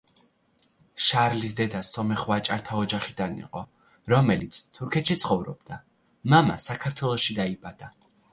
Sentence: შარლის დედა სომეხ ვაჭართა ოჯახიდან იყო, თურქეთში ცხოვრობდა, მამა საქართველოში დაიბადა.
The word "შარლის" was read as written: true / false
true